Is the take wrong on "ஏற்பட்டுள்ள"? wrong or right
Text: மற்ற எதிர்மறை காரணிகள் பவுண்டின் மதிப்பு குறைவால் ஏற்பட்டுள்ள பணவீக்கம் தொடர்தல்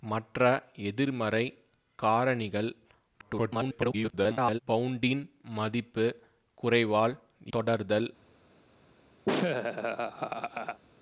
wrong